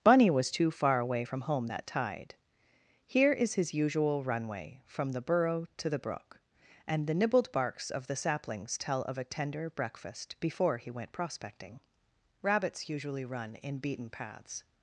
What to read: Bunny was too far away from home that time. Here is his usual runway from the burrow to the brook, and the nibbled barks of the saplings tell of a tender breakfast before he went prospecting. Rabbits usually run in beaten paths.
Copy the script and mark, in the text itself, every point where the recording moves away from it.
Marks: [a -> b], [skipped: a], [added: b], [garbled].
Bunny was too far away from home that [time. -> tide] Here is his usual runway from the burrow to the brook, and the nibbled barks of the saplings tell of a tender breakfast before he went prospecting. Rabbits usually run in beaten paths.